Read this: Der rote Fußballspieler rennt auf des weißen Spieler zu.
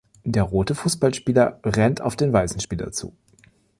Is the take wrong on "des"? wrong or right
wrong